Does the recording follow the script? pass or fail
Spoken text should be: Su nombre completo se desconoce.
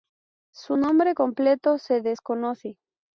pass